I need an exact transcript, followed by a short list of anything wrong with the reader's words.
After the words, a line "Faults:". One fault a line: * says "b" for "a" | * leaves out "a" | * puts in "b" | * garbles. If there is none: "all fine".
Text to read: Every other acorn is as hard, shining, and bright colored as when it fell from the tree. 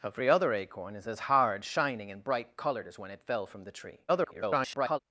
Every other acorn is as hard, shining, and bright colored as when it fell from the tree. [garbled]
Faults:
* garbles